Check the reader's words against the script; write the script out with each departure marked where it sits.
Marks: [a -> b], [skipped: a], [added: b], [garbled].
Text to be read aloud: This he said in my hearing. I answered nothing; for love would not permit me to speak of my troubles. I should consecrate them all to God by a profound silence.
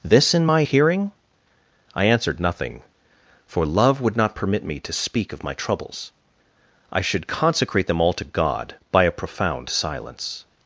This [skipped: he said] in my hearing. I answered nothing; for love would not permit me to speak of my troubles. I should consecrate them all to God by a profound silence.